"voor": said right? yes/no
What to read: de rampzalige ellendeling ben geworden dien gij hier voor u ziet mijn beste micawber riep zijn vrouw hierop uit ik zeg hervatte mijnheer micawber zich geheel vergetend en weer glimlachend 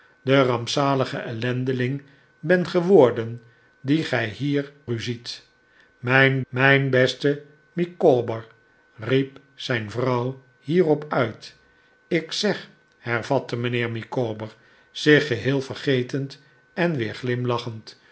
no